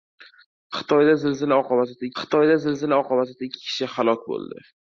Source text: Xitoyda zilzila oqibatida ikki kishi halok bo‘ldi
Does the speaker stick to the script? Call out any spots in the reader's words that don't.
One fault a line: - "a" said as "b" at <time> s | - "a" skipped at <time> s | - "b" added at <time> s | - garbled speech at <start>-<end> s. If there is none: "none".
- "xitoyda zilzila oqibatida" added at 2.2 s